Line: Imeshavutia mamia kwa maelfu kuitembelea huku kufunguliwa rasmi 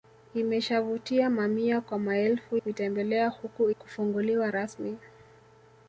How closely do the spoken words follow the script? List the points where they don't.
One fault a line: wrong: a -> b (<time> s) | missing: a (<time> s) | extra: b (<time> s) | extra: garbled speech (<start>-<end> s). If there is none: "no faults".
no faults